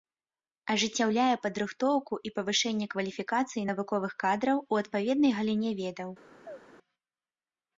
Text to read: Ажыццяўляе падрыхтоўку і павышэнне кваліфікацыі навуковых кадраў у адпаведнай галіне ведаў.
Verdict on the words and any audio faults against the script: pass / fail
fail